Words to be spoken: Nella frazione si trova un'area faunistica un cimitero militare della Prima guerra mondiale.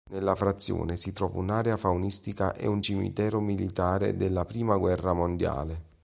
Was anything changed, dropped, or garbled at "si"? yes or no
no